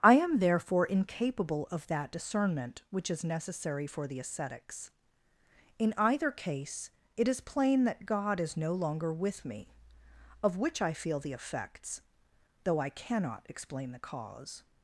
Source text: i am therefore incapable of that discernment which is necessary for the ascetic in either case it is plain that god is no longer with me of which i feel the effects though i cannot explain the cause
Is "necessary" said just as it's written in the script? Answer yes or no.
yes